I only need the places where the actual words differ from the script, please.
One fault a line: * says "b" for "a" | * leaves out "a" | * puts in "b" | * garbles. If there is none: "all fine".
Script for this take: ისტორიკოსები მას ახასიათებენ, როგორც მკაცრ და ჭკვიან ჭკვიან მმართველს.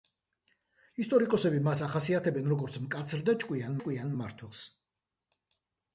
all fine